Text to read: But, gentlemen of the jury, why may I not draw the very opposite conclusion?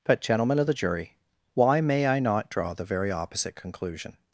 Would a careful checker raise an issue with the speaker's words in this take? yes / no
no